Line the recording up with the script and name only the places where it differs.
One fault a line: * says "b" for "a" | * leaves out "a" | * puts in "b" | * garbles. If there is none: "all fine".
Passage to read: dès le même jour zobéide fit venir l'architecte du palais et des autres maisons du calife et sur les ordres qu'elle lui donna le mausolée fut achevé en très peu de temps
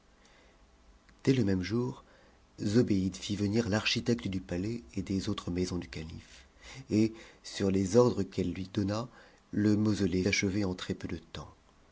* leaves out "fut"